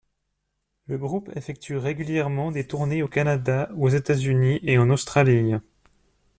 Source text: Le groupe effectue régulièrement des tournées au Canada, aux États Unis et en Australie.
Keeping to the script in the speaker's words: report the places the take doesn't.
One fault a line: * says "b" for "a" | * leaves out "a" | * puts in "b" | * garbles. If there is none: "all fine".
all fine